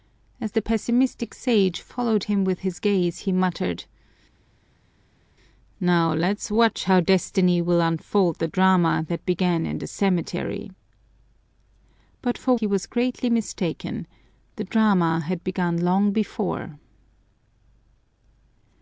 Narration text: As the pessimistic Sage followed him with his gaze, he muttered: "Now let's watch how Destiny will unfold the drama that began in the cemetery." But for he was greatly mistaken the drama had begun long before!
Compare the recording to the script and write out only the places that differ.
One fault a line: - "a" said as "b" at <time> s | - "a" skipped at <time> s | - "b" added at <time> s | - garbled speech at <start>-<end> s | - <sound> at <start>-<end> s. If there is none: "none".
none